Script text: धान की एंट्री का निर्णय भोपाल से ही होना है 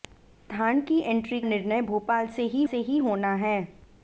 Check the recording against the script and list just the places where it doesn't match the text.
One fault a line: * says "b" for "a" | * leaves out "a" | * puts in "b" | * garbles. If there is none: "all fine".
* leaves out "का"
* puts in "से ही"